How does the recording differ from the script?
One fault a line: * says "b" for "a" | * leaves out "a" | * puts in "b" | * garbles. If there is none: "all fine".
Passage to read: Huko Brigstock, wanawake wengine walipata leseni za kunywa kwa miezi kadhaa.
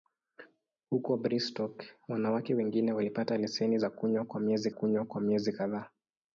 * puts in "kunywa kwa miezi"